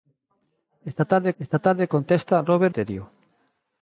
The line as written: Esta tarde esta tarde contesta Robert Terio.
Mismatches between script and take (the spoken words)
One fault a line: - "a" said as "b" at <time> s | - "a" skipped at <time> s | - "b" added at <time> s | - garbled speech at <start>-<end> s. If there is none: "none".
none